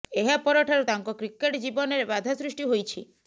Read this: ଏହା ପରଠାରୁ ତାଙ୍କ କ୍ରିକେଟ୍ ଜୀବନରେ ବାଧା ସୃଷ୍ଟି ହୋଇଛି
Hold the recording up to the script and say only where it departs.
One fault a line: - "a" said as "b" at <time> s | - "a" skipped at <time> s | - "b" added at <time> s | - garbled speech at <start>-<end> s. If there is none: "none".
none